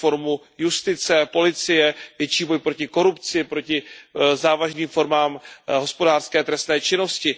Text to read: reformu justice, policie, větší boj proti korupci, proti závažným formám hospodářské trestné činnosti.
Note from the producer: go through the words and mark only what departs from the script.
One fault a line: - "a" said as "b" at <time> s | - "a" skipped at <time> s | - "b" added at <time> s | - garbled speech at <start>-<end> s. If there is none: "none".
none